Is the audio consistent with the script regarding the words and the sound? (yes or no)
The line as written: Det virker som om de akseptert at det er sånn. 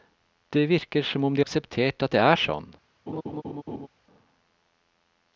no